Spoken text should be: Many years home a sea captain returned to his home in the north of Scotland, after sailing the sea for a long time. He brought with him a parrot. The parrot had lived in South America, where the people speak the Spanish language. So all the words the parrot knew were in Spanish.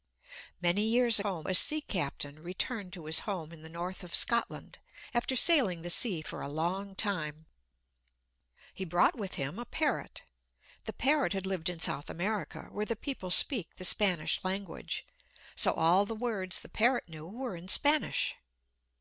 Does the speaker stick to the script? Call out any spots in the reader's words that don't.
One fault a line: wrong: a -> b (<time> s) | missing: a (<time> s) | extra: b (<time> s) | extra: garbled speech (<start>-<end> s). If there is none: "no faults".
no faults